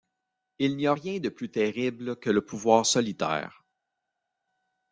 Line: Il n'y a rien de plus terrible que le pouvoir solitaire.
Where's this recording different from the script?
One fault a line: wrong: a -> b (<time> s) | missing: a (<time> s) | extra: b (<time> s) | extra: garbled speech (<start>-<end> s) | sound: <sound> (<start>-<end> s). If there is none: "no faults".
no faults